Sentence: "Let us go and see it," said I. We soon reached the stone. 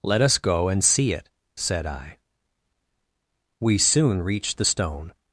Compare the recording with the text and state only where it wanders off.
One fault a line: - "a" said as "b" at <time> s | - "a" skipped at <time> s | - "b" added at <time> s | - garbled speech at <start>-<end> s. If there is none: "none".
none